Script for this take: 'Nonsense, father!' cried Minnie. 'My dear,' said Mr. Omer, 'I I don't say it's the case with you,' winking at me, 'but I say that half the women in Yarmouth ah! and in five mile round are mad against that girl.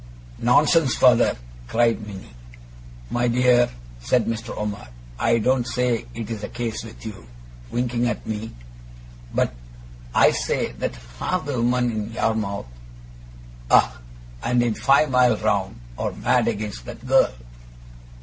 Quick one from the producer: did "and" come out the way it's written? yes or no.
yes